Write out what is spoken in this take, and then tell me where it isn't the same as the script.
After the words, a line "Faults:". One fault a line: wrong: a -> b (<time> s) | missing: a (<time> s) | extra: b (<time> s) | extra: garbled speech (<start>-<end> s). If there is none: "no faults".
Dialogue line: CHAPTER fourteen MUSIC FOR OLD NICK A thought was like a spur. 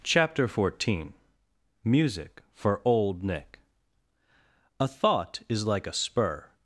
CHAPTER fourteen MUSIC FOR OLD NICK A thought is like a spur.
Faults:
wrong: was -> is (5.5 s)